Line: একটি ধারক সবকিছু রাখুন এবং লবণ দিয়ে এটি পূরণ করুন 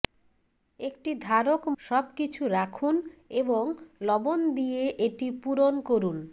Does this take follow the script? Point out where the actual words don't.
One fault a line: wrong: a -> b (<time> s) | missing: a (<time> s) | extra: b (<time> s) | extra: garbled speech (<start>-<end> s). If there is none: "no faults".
no faults